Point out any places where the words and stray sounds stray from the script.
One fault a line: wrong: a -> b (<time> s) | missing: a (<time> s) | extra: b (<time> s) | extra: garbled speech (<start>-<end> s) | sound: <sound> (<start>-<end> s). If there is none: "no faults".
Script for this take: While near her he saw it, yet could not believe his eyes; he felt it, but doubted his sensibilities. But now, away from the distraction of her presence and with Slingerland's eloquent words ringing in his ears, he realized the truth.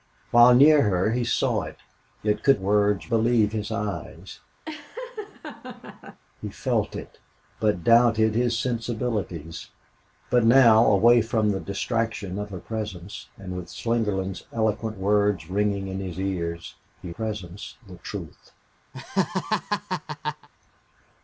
wrong: not -> words (2.6 s)
sound: laugh (4.7-6.2 s)
wrong: realized -> presence (17.1 s)
sound: laugh (18.9-20.5 s)